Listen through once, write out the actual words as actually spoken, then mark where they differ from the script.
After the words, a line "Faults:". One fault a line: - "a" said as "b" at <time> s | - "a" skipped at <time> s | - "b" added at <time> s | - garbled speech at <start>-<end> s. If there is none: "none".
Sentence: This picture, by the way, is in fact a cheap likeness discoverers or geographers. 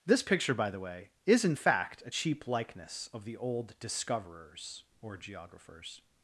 This picture, by the way, is in fact a cheap likeness of the old discoverers or geographers.
Faults:
- "of the old" added at 3.1 s